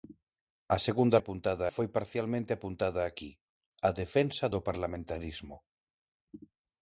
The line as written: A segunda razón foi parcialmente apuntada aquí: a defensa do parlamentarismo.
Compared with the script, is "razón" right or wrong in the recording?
wrong